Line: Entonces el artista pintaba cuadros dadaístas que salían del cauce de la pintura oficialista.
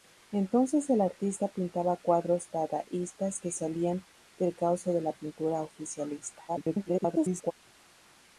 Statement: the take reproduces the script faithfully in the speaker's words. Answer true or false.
false